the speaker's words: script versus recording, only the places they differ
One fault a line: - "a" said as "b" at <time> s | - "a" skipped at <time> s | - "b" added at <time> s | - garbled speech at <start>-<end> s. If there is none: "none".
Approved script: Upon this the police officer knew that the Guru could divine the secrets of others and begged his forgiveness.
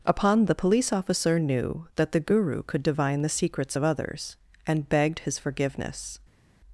- "this" skipped at 0.5 s